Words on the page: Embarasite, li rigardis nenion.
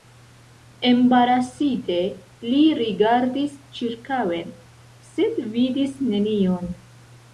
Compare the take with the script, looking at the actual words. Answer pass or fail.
fail